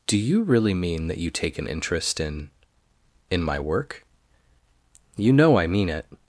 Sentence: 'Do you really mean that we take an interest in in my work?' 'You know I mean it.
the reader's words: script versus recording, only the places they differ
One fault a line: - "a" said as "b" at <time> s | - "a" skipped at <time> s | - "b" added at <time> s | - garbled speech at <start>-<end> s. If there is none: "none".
- "we" said as "you" at 1.2 s